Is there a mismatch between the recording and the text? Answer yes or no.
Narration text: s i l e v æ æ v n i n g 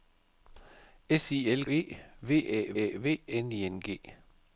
no